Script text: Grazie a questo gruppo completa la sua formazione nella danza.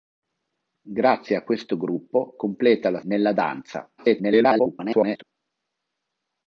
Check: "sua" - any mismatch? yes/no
yes